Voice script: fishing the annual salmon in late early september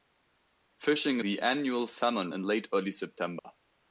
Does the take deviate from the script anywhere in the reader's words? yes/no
no